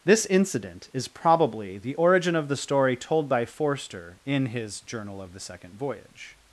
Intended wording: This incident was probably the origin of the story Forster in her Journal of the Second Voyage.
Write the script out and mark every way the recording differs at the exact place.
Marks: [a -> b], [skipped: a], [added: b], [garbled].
This incident [was -> is] probably the origin of the story [added: told by] Forster in [her -> his] Journal of the Second Voyage.